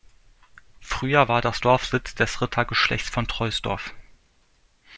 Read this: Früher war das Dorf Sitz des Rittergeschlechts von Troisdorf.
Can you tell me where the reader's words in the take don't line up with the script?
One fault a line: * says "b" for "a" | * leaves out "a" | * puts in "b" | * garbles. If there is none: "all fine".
all fine